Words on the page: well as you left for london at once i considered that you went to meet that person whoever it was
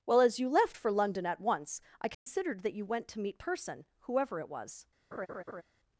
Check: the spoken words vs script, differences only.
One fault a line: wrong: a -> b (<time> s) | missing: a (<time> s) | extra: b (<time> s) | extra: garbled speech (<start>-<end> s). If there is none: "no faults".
missing: that (3.4 s)